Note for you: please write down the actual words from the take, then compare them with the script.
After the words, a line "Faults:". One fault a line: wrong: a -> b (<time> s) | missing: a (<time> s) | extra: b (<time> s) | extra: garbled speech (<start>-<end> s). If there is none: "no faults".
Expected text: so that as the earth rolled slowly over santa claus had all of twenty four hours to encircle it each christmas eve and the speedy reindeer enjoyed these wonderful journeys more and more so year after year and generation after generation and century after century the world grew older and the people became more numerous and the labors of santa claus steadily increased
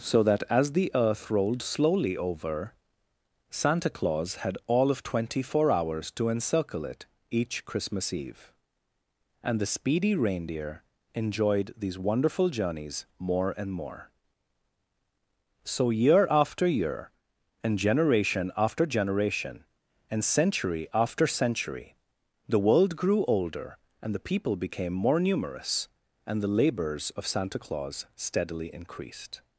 so that as the earth rolled slowly over santa claus had all of twenty four hours to encircle it each christmas eve and the speedy reindeer enjoyed these wonderful journeys more and more so year after year and generation after generation and century after century the world grew older and the people became more numerous and the labors of santa claus steadily increased
Faults:
no faults